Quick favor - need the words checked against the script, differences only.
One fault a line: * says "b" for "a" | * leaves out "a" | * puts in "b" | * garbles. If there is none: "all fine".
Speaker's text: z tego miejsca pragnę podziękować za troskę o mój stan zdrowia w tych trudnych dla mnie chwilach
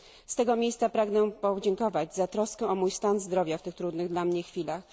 all fine